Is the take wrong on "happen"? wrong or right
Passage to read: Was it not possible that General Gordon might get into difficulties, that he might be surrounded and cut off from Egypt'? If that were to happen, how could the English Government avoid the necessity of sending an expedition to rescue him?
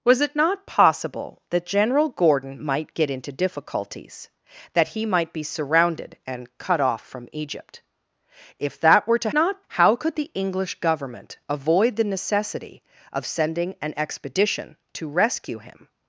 wrong